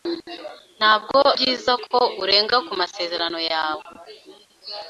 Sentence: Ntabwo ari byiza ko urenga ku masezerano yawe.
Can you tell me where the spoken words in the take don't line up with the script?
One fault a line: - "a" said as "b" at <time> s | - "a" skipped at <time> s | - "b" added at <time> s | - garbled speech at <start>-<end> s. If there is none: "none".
- "ari" skipped at 1.2 s